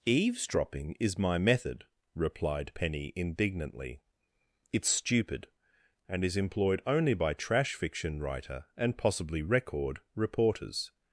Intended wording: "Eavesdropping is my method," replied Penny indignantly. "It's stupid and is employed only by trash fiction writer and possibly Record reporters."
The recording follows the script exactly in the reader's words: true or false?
true